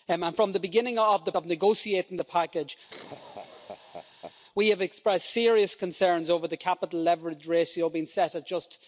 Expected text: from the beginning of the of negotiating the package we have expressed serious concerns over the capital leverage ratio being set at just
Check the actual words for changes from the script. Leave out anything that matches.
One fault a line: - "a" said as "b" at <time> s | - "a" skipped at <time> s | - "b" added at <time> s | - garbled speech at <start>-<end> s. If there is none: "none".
none